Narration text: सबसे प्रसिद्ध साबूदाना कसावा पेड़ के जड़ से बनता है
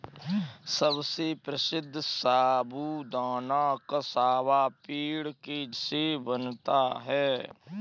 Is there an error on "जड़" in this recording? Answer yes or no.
yes